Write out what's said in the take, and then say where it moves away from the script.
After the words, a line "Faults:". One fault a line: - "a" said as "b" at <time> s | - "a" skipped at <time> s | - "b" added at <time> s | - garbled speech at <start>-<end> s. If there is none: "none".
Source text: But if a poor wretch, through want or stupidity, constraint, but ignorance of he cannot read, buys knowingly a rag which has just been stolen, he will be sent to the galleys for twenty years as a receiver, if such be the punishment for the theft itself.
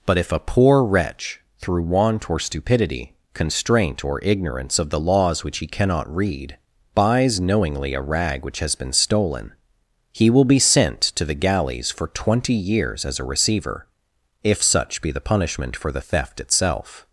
But if a poor wretch, through want or stupidity, constraint, or ignorance of the laws which he cannot read, buys knowingly a rag which has been stolen, he will be sent to the galleys for twenty years as a receiver, if such be the punishment for the theft itself.
Faults:
- "but" said as "or" at 4.0 s
- "the laws which" added at 4.9 s
- "just" skipped at 8.8 s